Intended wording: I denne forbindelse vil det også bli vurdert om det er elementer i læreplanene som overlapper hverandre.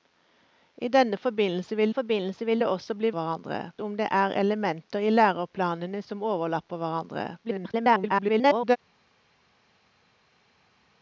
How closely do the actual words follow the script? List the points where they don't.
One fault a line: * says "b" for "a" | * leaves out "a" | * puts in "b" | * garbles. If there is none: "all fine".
* puts in "forbindelse vil"
* says "hverandre" for "vurdert"
* garbles